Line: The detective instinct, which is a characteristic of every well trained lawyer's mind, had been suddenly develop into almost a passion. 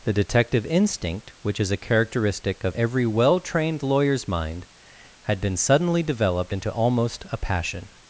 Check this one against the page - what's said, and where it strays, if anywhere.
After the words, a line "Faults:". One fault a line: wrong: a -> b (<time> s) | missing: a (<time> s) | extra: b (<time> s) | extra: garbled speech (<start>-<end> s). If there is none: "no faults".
The detective instinct, which is a characteristic of every well trained lawyer's mind, had been suddenly developed into almost a passion.
Faults:
wrong: develop -> developed (6.0 s)